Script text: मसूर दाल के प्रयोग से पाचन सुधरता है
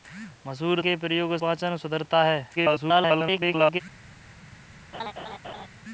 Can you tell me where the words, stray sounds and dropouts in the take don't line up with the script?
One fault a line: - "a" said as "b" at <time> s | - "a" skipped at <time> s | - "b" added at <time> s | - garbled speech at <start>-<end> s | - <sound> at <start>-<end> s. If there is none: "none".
- "दाल" skipped at 0.8 s
- "से" skipped at 1.4 s
- garbled speech at 2.5-3.8 s
- laugh at 4.9-5.7 s